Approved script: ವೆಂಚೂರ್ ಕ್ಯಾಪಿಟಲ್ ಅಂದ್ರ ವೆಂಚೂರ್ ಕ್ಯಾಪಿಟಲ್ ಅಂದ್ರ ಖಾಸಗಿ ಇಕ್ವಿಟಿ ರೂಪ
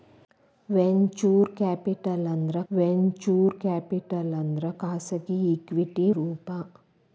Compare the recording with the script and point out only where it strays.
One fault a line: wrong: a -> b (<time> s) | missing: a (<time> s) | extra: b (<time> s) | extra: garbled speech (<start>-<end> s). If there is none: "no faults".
no faults